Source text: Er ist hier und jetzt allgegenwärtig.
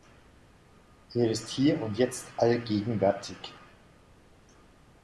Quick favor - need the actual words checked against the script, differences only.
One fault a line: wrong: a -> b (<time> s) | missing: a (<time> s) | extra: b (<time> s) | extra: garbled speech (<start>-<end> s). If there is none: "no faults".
no faults